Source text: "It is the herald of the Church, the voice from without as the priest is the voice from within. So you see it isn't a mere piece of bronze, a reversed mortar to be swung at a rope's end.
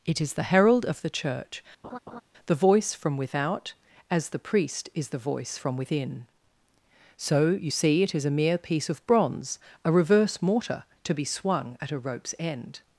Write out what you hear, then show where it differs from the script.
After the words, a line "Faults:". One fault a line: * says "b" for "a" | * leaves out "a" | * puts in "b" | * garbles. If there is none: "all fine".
"It is the herald of the Church, the voice from without as the priest is the voice from within. So you see it is a mere piece of bronze, a reverse mortar to be swung at a rope's end.
Faults:
* says "is" for "isn't"
* says "reverse" for "reversed"